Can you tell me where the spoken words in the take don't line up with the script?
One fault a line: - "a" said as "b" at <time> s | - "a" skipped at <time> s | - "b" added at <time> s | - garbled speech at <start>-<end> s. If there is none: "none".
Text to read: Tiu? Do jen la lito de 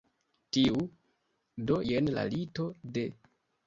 none